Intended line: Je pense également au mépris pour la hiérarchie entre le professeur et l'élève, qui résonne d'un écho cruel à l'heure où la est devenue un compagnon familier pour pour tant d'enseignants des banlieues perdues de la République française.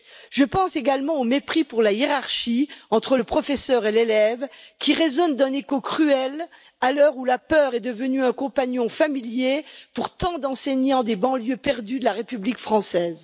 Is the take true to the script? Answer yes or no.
no